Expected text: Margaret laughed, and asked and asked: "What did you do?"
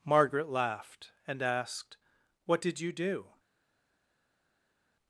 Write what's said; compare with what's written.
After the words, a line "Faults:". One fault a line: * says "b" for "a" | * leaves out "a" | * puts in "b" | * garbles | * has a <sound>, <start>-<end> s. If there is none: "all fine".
Margaret laughed, and asked: "What did you do?"
Faults:
* leaves out "and asked"